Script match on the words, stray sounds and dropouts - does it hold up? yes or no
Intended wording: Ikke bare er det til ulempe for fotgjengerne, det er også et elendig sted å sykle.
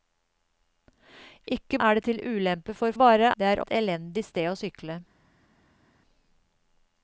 no